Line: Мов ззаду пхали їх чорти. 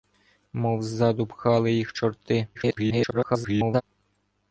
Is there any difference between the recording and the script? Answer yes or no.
yes